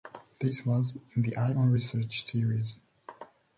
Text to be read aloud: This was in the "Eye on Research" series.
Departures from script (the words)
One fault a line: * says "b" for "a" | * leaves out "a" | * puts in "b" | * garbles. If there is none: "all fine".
all fine